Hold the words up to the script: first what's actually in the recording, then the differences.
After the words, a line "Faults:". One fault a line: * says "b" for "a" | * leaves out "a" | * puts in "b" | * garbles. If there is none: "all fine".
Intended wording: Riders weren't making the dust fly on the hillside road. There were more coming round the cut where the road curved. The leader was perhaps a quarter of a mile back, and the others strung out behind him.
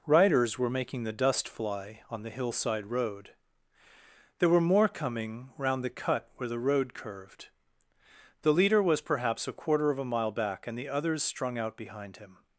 Riders were making the dust fly on the hillside road. There were more coming round the cut where the road curved. The leader was perhaps a quarter of a mile back, and the others strung out behind him.
Faults:
* says "were" for "weren't"